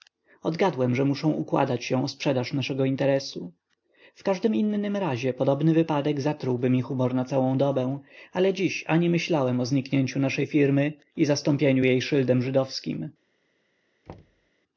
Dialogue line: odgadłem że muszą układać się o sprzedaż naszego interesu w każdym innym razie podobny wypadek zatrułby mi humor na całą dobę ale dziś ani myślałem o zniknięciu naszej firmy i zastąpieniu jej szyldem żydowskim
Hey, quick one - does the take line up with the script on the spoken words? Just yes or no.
yes